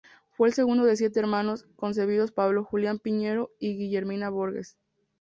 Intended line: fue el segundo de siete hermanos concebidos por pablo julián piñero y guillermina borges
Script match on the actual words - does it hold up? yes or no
no